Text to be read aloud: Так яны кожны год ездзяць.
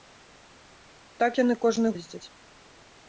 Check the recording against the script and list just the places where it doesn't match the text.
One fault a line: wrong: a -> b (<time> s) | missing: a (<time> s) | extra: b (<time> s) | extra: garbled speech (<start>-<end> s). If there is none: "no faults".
missing: год (1.9 s)